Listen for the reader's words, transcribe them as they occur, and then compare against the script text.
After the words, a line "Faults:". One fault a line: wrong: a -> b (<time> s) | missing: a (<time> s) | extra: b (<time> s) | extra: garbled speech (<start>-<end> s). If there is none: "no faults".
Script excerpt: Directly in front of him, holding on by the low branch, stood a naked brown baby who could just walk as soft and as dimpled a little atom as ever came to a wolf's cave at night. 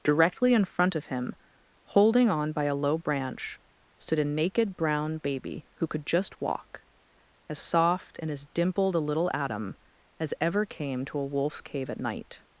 Directly in front of him, holding on by a low branch, stood a naked brown baby who could just walk as soft and as dimpled a little atom as ever came to a wolf's cave at night.
Faults:
wrong: the -> a (2.6 s)